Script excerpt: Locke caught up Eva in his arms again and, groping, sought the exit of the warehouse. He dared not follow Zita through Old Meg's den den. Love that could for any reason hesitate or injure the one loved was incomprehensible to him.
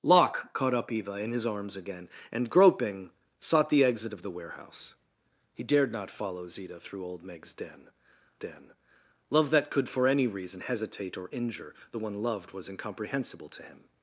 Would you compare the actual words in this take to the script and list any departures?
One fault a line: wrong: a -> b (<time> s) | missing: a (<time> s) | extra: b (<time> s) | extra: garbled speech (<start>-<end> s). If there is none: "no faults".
no faults